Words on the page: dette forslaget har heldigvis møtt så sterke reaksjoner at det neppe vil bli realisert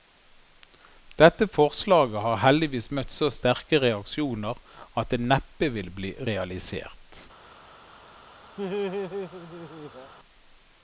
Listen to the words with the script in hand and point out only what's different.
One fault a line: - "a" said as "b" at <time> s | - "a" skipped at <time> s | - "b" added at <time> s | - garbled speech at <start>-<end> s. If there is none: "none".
none